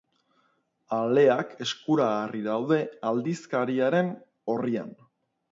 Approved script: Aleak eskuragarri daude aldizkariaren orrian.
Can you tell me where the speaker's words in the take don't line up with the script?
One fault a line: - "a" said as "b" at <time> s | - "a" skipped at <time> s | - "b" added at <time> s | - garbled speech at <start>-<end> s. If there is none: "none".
none